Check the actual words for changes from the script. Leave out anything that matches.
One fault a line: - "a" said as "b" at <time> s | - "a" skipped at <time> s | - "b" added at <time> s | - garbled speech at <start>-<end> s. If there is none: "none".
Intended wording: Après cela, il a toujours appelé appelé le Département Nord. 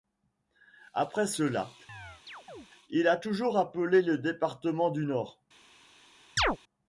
- "appelé" skipped at 4.0 s
- "du" added at 4.9 s